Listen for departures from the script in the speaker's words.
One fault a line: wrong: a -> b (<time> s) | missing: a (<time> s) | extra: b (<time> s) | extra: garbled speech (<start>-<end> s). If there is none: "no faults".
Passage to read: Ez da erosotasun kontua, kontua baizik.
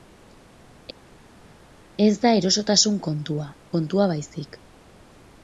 no faults